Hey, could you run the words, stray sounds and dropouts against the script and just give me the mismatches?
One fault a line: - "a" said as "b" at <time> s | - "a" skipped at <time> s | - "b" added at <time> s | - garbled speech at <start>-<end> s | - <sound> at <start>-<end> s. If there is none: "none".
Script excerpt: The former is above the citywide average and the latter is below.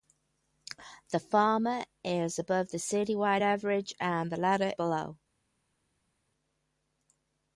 - "is" skipped at 4.7 s